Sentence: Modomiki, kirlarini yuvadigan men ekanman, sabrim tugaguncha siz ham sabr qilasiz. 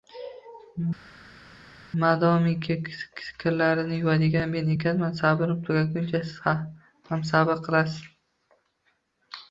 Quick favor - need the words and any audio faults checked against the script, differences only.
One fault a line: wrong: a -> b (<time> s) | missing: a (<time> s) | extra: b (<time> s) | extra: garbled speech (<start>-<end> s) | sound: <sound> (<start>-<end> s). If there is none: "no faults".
no faults